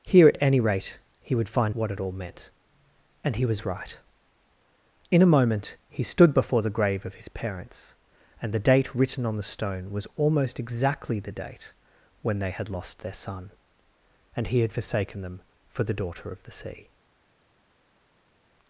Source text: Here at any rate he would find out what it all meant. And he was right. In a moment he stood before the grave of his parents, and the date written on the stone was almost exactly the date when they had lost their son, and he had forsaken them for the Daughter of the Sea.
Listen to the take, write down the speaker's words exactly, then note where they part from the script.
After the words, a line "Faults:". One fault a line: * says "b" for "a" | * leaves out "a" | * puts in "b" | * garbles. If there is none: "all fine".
Here at any rate he would find what it all meant. And he was right. In a moment he stood before the grave of his parents, and the date written on the stone was almost exactly the date when they had lost their son, and he had forsaken them for the Daughter of the Sea.
Faults:
* leaves out "out"